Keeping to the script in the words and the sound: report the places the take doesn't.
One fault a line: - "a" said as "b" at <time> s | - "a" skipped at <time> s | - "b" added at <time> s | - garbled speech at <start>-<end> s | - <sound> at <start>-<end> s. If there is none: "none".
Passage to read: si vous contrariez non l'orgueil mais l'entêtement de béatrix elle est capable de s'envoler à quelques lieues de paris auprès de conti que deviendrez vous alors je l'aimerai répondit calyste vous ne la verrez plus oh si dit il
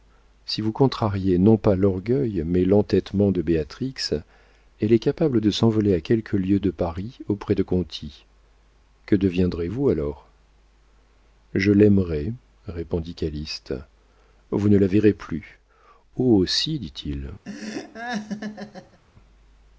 - "pas" added at 1.6 s
- laugh at 17.4-19.0 s